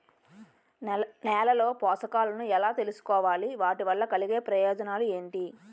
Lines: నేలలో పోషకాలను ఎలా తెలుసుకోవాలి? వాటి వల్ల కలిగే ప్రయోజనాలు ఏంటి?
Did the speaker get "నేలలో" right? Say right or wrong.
right